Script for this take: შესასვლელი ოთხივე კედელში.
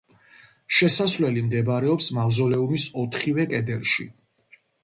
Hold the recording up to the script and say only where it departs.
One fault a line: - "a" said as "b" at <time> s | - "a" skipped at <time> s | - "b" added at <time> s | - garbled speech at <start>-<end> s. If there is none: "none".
- "მდებარეობს მავზოლეუმის" added at 1.5 s